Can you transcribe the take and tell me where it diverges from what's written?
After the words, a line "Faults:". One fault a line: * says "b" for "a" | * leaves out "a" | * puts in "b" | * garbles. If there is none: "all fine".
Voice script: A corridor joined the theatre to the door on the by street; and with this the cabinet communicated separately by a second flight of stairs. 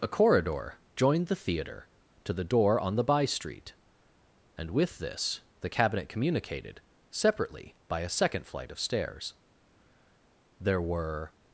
A corridor joined the theatre to the door on the by street; and with this the cabinet communicated separately by a second flight of stairs. There were
Faults:
* puts in "There were"